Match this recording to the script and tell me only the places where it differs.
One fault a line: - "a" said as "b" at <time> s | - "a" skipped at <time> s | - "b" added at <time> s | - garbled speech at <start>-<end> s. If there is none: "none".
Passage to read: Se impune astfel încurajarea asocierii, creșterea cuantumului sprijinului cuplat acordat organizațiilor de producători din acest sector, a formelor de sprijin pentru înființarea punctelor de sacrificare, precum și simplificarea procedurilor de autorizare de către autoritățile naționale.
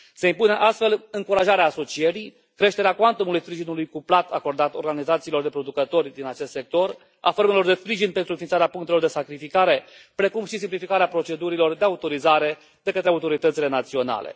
none